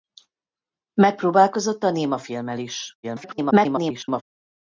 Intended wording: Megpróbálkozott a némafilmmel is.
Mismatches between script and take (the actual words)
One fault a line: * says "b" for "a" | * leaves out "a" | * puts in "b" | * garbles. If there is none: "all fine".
* garbles